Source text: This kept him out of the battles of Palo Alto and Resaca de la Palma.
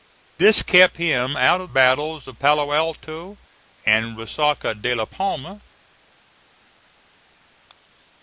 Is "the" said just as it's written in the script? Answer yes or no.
no